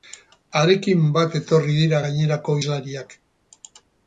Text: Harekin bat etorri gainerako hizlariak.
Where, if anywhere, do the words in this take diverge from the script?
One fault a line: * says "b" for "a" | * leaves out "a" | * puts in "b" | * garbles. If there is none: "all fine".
* puts in "dira"